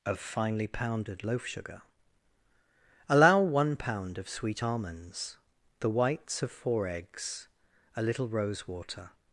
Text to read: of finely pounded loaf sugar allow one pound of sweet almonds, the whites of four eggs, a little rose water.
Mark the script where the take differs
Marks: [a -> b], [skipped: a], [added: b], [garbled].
of finely pounded loaf sugar allow one pound of sweet almonds, the whites of four eggs, a little rose water.